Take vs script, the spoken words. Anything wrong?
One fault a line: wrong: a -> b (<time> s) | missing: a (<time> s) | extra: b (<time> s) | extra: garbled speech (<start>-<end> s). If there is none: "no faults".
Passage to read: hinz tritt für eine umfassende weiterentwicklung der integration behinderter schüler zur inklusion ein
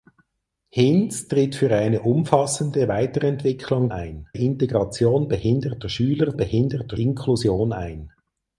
wrong: der -> ein (3.9 s)
wrong: zur -> behinderter (6.4 s)